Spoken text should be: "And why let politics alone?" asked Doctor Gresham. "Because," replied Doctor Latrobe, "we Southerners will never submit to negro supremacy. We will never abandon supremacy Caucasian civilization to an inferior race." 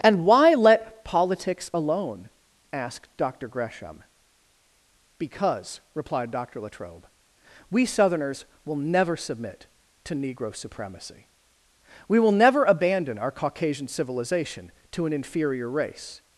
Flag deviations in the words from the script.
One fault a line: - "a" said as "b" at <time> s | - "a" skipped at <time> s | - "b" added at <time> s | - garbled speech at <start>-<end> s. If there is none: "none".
- "supremacy" said as "our" at 13.2 s